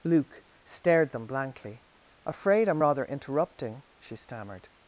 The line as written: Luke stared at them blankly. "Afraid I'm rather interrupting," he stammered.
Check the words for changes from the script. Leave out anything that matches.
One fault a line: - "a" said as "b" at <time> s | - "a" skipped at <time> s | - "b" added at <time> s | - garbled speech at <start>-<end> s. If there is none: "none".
- "at" skipped at 1.1 s
- "he" said as "she" at 4.0 s